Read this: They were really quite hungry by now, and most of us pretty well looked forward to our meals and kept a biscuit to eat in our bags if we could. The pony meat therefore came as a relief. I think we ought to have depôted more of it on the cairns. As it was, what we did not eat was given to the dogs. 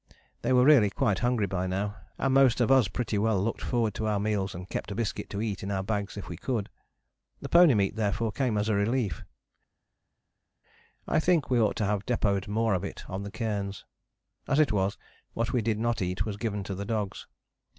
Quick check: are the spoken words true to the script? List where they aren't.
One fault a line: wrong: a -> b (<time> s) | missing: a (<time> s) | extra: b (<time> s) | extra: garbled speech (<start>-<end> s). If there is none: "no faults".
no faults